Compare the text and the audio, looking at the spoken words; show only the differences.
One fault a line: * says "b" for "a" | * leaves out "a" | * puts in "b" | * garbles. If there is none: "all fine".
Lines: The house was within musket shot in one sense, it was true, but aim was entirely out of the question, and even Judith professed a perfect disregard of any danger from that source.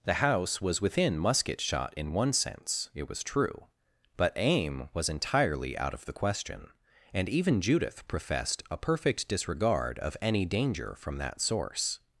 all fine